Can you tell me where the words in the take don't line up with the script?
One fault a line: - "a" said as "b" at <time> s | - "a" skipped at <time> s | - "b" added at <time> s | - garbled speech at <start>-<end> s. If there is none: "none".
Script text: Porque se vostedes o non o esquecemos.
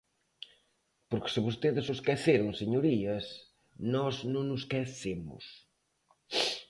- "esqueceron señorías nós" added at 2.0 s